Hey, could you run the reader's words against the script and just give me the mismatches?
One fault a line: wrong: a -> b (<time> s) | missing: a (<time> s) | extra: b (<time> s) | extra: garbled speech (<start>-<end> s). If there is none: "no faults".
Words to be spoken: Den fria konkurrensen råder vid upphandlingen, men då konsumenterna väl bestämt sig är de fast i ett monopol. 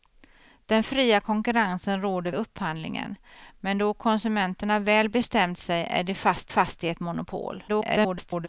missing: vid (2.3 s)
extra: fast (6.5 s)
extra: garbled speech (7.7-8.5 s)